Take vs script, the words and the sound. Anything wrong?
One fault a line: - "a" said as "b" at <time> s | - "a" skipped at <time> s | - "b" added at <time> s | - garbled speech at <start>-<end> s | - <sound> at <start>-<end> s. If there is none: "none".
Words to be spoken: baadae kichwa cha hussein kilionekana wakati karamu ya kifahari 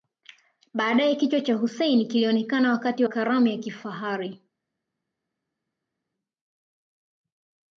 none